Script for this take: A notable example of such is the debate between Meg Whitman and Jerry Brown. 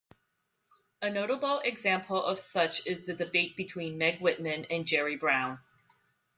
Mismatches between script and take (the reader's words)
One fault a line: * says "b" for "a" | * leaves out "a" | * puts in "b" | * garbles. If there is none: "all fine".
all fine